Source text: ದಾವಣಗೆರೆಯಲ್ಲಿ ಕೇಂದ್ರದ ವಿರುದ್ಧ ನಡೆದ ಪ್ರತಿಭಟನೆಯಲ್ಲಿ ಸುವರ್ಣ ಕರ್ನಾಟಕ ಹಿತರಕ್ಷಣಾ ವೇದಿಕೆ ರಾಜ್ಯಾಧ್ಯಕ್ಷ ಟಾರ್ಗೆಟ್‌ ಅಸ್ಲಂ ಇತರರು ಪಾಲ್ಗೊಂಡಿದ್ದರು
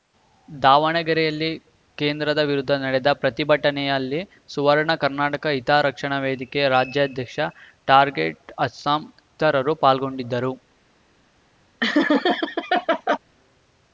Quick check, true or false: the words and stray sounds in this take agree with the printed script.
false